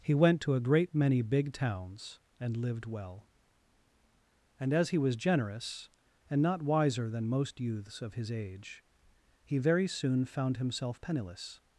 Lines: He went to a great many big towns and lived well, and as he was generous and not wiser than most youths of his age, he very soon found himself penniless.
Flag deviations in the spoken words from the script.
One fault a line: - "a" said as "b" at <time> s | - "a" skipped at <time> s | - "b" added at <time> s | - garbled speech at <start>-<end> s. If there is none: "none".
none